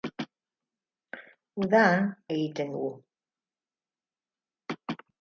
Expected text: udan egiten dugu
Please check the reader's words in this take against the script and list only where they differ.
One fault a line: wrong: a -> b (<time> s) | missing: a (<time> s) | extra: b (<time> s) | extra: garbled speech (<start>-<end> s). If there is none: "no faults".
no faults